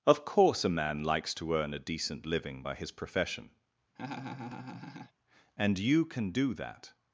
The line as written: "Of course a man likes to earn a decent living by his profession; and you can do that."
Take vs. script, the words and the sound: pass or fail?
fail